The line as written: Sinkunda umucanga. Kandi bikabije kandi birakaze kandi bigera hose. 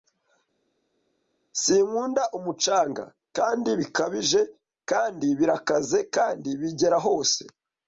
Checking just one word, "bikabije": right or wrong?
right